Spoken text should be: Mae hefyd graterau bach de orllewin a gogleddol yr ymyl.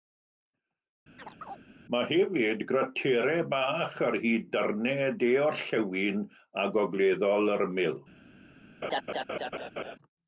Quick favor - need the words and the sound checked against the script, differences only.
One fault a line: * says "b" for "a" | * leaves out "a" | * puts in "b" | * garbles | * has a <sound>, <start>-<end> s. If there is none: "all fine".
* has a chirp, 1.2-1.6 s
* puts in "ar hyd darnau"
* has a laugh, 8.8-10.0 s